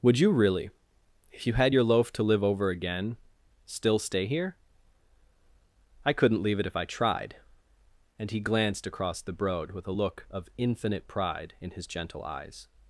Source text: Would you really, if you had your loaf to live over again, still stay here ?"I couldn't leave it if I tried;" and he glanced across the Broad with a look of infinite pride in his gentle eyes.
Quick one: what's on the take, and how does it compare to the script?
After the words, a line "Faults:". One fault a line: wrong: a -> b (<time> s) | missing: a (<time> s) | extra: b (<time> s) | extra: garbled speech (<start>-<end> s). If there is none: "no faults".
Would you really, if you had your loaf to live over again, still stay here ?"I couldn't leave it if I tried;" and he glanced across the Broad with a look of infinite pride in his gentle eyes.
Faults:
no faults